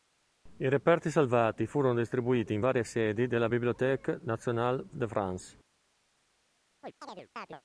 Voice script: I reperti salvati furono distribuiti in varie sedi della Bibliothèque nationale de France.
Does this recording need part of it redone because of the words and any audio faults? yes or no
yes